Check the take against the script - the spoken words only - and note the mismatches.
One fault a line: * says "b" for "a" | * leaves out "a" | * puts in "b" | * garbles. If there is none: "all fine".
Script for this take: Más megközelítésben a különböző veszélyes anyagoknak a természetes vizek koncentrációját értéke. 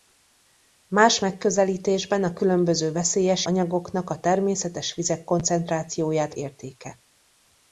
all fine